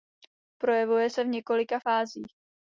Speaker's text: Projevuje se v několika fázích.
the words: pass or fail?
pass